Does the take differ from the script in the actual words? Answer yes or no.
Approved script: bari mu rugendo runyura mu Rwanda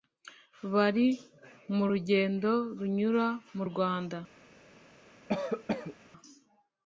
no